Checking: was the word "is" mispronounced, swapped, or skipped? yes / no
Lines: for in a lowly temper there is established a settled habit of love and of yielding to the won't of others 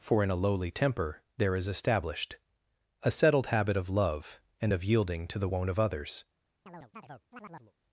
no